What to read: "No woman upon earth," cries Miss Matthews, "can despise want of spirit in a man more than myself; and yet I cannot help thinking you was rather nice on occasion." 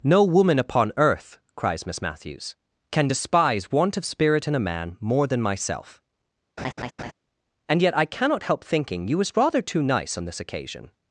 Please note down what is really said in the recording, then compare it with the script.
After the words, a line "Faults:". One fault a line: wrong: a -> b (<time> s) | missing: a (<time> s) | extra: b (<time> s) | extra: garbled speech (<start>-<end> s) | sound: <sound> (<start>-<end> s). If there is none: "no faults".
"No woman upon earth," cries Miss Matthews, "can despise want of spirit in a man more than myself; and yet I cannot help thinking you was rather too nice on this occasion."
Faults:
sound: laugh (6.6-7.1 s)
extra: too (9.6 s)
extra: this (10.3 s)